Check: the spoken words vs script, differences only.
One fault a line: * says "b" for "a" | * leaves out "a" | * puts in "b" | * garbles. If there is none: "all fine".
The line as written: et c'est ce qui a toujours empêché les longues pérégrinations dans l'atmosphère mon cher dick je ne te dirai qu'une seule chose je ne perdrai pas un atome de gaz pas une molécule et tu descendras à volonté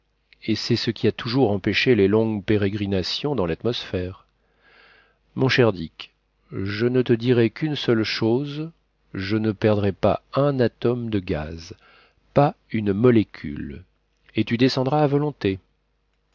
all fine